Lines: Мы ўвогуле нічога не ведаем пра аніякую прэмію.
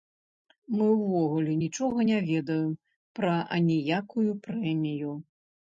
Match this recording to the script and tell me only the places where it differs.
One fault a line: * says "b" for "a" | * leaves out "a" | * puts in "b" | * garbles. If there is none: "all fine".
all fine